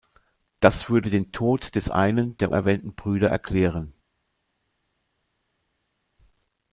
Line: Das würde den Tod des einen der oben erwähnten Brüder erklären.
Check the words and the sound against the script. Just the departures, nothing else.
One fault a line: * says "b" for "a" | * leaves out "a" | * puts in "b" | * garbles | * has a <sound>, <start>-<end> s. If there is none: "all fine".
* leaves out "oben"